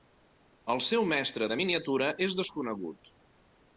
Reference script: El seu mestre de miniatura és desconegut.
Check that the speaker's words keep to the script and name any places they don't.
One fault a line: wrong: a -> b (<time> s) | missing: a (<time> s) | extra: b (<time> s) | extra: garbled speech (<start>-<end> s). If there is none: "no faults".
no faults